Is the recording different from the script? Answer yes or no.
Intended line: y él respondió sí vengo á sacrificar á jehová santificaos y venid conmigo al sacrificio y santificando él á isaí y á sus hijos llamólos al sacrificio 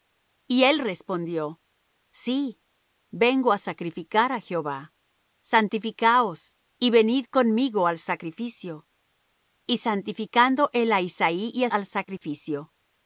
yes